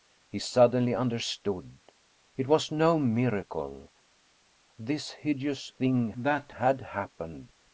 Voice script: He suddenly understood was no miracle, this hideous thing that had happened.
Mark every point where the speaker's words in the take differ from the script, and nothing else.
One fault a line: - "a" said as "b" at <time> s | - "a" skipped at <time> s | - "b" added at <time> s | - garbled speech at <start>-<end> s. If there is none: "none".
- "it" added at 2.4 s